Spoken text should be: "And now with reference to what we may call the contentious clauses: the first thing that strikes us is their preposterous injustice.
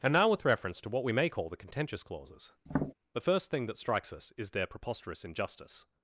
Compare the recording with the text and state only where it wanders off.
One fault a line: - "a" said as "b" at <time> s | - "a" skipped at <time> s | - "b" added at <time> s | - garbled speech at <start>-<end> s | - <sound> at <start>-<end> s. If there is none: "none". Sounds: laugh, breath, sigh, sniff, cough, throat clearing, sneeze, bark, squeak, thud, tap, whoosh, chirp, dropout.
- tap at 2.7-2.9 s